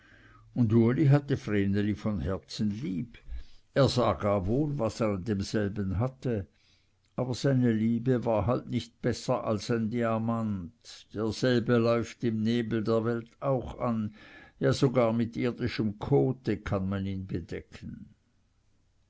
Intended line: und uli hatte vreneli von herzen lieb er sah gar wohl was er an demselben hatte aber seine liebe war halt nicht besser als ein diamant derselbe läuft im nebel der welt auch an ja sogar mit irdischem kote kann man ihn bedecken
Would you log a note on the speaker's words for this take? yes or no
no